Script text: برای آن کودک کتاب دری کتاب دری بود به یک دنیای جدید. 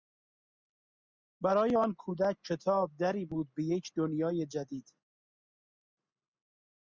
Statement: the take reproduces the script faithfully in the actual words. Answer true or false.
false